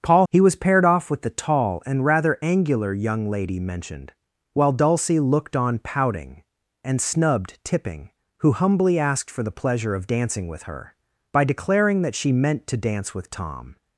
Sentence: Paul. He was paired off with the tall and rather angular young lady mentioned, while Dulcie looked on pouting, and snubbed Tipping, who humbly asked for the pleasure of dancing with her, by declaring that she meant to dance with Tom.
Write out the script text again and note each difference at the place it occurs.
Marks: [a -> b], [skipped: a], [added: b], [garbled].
Paul. He was paired off with the tall and rather angular young lady mentioned, while Dulcie looked on pouting, and snubbed Tipping, who humbly asked for the pleasure of dancing with her, by declaring that she meant to dance with Tom.